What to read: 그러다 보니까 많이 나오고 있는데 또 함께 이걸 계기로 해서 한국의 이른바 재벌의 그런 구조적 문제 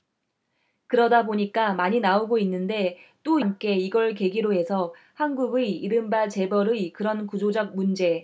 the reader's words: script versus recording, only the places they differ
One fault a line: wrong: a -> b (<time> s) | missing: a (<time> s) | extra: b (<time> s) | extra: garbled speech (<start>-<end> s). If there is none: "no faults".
no faults